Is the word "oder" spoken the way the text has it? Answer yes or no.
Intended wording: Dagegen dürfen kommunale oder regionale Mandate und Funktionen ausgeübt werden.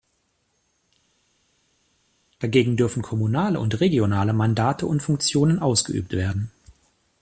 no